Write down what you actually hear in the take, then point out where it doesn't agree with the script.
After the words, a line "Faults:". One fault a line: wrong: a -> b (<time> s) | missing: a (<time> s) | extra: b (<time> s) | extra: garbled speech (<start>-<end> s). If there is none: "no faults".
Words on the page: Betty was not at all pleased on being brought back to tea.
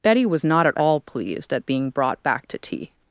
Betty was not at all pleased at being brought back to tea.
Faults:
wrong: on -> at (1.5 s)